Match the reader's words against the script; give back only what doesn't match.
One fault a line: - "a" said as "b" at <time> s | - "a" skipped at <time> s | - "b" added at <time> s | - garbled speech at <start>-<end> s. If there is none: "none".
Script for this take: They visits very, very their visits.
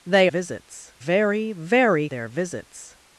none